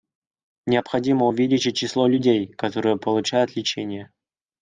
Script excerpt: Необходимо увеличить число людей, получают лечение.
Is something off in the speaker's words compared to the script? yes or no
yes